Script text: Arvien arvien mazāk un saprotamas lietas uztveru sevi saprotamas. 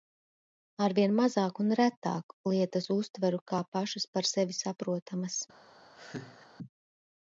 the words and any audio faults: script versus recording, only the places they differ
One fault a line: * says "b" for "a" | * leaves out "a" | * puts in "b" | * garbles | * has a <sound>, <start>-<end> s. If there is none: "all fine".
* leaves out "arvien"
* says "retāk" for "saprotamas"
* puts in "kā pašas par"
* has a laugh, 5.9-6.5 s